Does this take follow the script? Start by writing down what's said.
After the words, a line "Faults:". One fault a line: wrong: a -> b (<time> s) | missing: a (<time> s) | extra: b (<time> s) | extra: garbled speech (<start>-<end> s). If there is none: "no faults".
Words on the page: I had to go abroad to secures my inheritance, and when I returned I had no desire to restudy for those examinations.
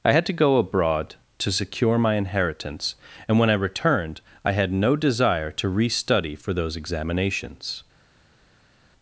I had to go abroad to secure my inheritance, and when I returned I had no desire to restudy for those examinations.
Faults:
wrong: secures -> secure (1.5 s)